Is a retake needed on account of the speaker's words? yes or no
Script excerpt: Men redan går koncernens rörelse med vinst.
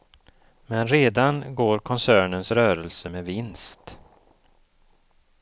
no